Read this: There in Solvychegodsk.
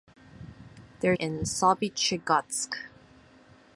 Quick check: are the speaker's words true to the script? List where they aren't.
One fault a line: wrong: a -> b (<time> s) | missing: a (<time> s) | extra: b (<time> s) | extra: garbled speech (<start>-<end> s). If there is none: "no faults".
no faults